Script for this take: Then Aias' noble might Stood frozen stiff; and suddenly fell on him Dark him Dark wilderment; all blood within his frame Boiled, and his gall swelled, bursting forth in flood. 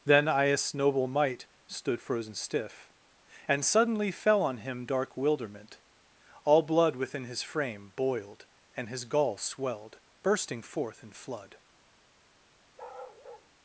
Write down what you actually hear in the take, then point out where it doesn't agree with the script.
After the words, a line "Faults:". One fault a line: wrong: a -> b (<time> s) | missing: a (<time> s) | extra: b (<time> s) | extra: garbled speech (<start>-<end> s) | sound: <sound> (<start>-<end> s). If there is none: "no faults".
Then Aias' noble might Stood frozen stiff; and suddenly fell on him Dark wilderment; all blood within his frame Boiled, and his gall swelled, bursting forth in flood.
Faults:
missing: him Dark (5.2 s)
sound: bark (12.8-13.5 s)